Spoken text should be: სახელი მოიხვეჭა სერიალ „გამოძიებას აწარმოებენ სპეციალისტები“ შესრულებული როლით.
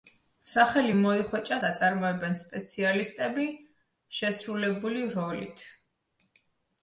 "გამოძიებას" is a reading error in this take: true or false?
true